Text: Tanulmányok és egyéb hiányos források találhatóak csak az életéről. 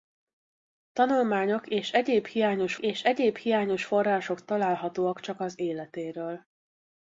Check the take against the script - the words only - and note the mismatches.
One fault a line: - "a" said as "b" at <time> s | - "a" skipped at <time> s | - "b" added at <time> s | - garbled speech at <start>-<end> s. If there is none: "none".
- "és egyéb hiányos" added at 2.8 s